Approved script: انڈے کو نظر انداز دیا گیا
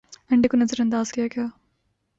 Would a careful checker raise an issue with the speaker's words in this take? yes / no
no